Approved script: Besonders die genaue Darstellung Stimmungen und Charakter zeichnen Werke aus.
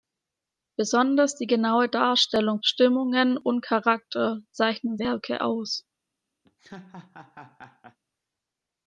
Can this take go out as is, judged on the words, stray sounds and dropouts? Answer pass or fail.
fail